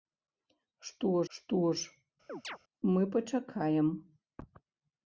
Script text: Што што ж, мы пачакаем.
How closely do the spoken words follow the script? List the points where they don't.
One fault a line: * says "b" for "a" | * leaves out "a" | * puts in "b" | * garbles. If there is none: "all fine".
all fine